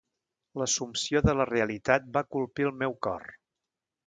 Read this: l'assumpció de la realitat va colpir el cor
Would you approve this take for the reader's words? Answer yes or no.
no